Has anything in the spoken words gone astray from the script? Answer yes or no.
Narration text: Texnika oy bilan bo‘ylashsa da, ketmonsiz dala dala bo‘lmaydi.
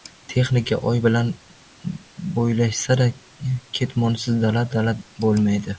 no